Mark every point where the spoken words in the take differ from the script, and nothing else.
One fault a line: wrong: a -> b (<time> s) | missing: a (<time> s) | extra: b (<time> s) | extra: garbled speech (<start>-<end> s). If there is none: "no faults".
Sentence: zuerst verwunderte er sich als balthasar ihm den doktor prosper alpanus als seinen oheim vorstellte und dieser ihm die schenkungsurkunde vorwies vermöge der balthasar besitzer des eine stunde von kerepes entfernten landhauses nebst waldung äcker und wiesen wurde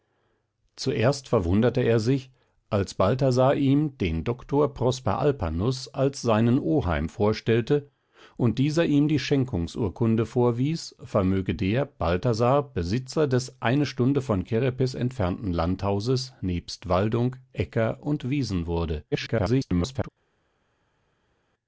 extra: garbled speech (19.1-20.1 s)